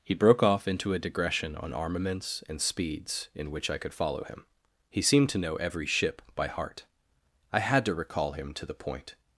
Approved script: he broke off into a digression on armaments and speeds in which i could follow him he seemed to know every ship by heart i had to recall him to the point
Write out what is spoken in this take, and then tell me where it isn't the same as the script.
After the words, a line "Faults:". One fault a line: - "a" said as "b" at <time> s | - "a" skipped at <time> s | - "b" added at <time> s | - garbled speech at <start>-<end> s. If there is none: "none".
he broke off into a digression on armaments and speeds in which i could follow him he seemed to know every ship by heart i had to recall him to the point
Faults:
none